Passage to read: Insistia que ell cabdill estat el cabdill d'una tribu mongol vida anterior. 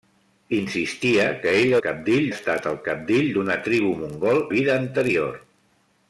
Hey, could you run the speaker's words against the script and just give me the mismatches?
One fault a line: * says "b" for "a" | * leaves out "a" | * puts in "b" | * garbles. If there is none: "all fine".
all fine